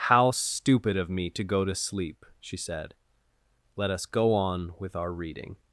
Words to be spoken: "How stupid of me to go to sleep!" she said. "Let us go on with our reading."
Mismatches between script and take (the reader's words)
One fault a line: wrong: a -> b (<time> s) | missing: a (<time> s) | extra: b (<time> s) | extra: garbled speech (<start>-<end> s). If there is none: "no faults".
no faults